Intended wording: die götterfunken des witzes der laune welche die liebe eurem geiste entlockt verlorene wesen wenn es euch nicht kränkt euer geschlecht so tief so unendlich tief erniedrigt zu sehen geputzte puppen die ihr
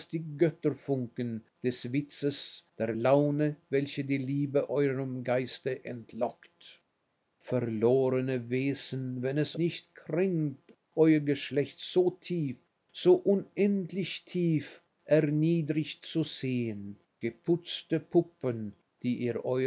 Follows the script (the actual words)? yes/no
no